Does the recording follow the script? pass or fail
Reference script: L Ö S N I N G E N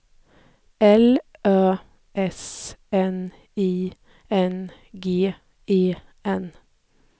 pass